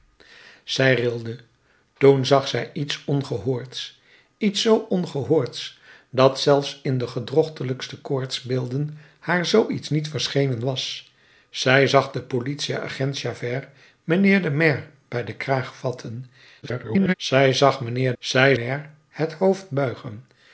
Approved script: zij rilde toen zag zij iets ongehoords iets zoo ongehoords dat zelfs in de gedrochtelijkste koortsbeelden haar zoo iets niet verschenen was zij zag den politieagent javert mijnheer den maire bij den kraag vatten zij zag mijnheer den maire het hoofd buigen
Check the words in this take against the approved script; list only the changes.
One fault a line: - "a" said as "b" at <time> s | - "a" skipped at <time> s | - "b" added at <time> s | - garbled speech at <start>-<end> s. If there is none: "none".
- garbled speech at 16.6-17.1 s
- "den" said as "zij" at 18.2 s